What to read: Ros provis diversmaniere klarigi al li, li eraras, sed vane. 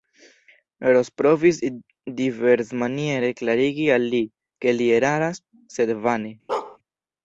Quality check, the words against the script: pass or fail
fail